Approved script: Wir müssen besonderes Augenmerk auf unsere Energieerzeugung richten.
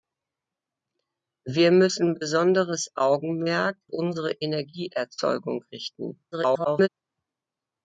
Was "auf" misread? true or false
true